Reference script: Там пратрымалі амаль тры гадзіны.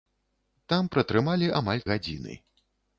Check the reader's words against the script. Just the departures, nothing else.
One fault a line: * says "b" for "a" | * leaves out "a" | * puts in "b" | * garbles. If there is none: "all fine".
* leaves out "тры"